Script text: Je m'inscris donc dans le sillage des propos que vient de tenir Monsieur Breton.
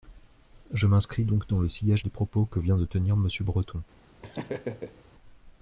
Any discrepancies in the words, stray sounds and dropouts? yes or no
yes